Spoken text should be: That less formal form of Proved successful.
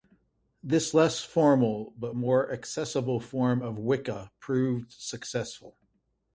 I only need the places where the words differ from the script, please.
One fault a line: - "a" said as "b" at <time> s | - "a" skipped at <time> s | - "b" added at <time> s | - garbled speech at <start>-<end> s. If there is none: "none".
- "That" said as "This" at 0.6 s
- "but more accessible" added at 2.0 s
- "Wicca" added at 3.8 s